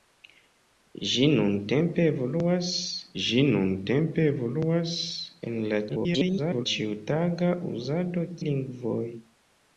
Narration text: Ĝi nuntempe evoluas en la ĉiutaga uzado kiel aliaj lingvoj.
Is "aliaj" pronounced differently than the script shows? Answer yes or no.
yes